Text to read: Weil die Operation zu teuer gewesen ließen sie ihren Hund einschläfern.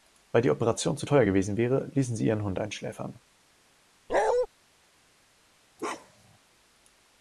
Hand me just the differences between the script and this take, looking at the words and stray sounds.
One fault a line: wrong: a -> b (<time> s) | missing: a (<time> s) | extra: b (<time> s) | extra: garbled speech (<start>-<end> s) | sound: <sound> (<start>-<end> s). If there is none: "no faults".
extra: wäre (1.6 s)
sound: bark (4.1-4.5 s)
sound: bark (5.8-6.4 s)